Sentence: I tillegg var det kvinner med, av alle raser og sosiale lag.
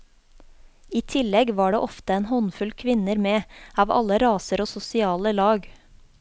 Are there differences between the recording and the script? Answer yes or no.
yes